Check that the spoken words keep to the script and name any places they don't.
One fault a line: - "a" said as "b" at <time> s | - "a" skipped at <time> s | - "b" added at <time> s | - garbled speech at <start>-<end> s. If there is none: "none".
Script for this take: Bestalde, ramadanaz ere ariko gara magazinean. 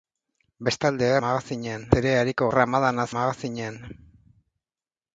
- "ramadanaz" said as "magazinean" at 1.2 s
- "gara" said as "ramadanaz" at 2.6 s